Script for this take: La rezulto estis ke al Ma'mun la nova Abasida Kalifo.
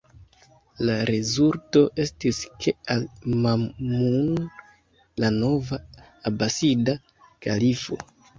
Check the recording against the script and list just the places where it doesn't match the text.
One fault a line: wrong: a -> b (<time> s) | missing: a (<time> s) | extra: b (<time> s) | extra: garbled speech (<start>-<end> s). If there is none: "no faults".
no faults